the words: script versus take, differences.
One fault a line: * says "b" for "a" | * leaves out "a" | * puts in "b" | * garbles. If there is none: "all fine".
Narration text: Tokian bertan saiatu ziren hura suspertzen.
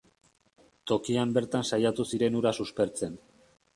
all fine